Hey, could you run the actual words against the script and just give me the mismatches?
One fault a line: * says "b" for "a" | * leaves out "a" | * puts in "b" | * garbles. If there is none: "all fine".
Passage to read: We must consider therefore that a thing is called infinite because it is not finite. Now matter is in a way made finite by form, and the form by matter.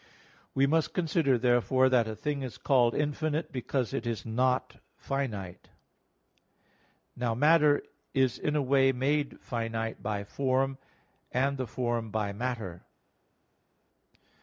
all fine